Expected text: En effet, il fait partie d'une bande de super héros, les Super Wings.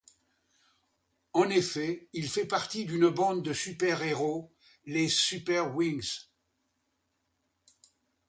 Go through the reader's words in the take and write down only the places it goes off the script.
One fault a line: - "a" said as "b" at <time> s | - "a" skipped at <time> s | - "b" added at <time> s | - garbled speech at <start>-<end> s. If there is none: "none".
none